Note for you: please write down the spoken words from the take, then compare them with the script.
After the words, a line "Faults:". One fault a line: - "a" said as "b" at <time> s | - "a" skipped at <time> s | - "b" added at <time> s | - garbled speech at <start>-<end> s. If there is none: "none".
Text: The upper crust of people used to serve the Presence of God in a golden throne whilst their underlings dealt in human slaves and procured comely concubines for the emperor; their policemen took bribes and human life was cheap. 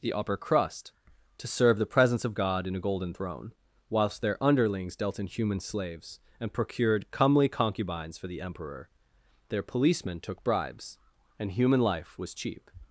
The upper crust to serve the Presence of God in a golden throne whilst their underlings dealt in human slaves and procured comely concubines for the emperor; their policemen took bribes and human life was cheap.
Faults:
- "of people used" skipped at 0.9 s